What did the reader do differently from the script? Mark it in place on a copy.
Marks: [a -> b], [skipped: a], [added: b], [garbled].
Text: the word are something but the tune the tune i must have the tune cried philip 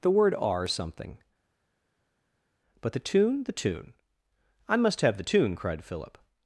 the word are something but the tune the tune i must have the tune cried philip